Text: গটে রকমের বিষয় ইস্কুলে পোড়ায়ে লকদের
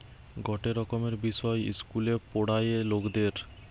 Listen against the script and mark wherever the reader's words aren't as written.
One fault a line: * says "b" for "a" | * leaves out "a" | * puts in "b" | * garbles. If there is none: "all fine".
all fine